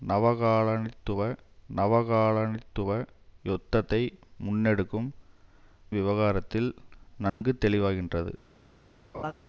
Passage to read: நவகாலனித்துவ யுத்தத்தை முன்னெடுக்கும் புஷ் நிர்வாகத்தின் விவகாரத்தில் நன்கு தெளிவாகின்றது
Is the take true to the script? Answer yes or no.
no